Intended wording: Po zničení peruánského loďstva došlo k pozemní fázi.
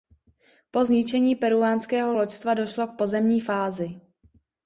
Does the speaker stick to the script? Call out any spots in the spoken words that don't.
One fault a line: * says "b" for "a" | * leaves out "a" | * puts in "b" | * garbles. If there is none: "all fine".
all fine